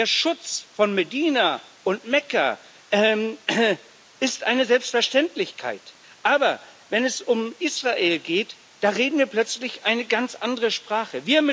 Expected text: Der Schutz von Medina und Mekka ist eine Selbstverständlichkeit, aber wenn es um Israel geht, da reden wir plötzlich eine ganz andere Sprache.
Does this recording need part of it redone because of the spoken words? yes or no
no